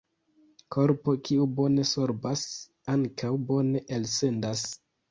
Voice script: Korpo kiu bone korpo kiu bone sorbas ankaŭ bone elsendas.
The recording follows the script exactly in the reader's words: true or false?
false